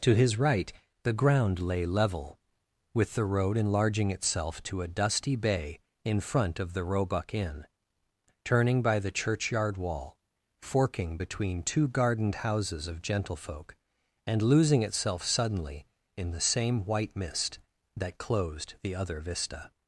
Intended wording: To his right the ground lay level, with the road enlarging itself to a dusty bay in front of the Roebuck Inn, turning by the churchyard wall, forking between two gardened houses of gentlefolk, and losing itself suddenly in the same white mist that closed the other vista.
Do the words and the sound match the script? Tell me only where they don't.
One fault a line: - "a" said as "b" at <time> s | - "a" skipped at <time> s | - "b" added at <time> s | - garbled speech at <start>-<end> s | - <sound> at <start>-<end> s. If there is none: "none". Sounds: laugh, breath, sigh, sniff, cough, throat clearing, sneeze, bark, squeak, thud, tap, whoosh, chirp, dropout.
none